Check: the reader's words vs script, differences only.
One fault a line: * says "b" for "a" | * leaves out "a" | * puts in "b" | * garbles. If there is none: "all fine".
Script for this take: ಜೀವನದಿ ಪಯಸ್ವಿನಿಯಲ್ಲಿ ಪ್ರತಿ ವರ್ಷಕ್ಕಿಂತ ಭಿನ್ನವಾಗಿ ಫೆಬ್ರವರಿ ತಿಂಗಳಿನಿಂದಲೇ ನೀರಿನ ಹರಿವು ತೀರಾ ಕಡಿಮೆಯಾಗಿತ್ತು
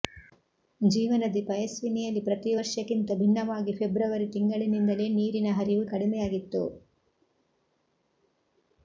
* leaves out "ತೀರಾ"